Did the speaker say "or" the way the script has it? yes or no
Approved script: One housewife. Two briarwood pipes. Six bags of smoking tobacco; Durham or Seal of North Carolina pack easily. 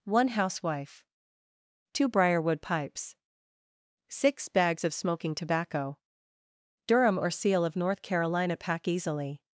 yes